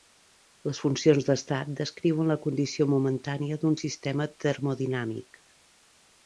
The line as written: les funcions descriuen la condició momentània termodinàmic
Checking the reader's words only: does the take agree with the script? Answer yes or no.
no